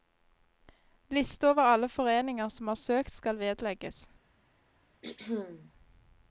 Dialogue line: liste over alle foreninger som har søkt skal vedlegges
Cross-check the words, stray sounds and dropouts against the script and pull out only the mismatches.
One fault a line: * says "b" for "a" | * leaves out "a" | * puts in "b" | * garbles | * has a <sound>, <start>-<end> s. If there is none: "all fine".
* has a throat clearing, 5.0-5.7 s